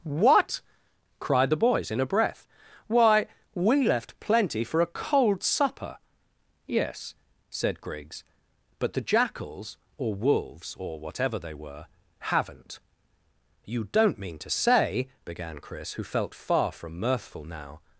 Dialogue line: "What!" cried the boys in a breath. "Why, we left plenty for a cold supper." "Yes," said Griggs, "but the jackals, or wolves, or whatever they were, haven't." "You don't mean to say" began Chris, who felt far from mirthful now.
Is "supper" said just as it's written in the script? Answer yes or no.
yes